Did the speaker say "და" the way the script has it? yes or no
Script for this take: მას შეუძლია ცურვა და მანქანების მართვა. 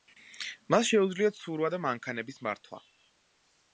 yes